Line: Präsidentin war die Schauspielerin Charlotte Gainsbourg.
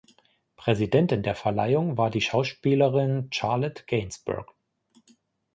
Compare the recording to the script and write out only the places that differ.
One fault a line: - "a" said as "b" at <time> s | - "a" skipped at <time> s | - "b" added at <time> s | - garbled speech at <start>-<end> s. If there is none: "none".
- "der Verleihung" added at 1.2 s